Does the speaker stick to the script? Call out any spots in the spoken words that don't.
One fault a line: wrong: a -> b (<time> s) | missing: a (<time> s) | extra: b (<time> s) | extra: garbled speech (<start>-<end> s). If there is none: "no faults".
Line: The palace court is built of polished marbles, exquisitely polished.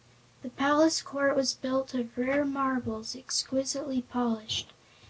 wrong: is -> was (1.4 s)
wrong: polished -> rare (2.2 s)